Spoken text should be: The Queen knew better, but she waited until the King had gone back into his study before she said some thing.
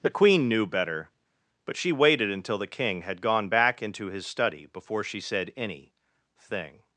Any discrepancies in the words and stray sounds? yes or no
yes